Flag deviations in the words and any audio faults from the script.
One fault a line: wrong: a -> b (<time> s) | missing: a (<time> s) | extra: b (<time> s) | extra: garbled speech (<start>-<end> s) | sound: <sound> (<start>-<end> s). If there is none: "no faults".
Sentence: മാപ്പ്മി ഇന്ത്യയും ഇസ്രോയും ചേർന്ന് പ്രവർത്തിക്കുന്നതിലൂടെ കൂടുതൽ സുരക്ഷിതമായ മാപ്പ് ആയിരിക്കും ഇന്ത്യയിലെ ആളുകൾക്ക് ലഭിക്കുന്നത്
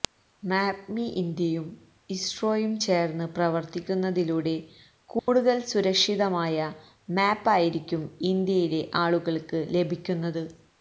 sound: dropout (5.2-5.3 s)